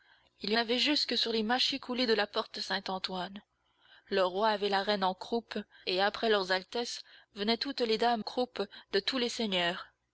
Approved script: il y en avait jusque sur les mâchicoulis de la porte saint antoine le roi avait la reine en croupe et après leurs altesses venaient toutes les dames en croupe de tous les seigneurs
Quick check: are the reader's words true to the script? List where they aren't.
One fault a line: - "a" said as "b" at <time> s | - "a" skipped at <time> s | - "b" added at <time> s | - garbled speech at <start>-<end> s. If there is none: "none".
- "en" skipped at 0.6 s
- "en" skipped at 8.2 s